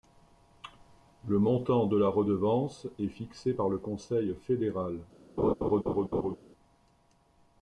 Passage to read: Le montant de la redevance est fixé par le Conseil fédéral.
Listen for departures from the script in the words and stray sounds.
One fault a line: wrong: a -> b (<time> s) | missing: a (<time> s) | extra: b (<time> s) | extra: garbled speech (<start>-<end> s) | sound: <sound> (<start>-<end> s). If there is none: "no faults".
sound: laugh (5.4-6.4 s)